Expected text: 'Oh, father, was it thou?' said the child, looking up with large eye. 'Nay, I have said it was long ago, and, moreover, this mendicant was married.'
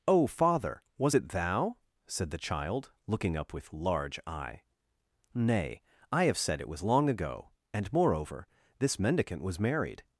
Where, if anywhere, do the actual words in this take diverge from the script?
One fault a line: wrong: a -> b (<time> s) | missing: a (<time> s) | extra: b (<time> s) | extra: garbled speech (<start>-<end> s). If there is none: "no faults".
no faults